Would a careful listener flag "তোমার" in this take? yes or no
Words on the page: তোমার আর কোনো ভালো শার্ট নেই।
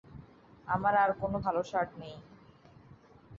yes